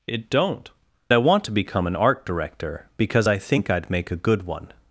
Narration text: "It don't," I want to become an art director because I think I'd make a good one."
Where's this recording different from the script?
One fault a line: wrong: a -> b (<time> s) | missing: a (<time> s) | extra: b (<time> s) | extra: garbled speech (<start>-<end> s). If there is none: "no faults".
no faults